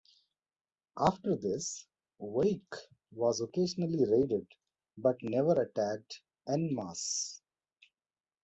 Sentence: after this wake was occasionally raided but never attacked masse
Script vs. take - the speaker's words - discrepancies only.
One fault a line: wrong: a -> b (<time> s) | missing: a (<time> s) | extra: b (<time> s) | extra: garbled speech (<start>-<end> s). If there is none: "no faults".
extra: en (6.5 s)